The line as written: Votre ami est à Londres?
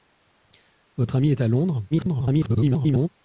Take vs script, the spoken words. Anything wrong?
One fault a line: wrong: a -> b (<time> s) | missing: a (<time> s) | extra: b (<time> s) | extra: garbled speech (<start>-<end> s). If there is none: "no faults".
extra: garbled speech (1.9-3.1 s)